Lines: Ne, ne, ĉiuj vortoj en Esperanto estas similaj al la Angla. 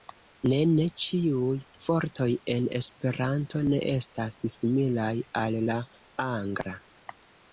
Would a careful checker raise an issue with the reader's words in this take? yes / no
yes